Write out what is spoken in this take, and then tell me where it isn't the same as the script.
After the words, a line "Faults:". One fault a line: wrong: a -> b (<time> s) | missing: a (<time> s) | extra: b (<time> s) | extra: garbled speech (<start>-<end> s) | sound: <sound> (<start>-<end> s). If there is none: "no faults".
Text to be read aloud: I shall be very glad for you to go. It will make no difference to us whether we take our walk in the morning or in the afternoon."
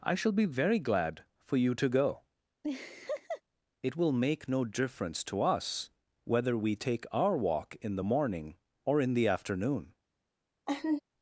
I shall be very glad for you to go. It will make no difference to us whether we take our walk in the morning or in the afternoon."
Faults:
sound: laugh (2.6-3.4 s)
sound: laugh (10.7-11.0 s)